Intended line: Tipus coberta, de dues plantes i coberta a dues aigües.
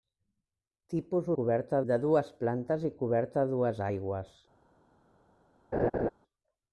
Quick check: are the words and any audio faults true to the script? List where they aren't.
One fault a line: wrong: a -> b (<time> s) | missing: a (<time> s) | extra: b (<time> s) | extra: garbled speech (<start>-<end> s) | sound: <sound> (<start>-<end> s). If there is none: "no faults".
sound: laugh (5.7-6.1 s)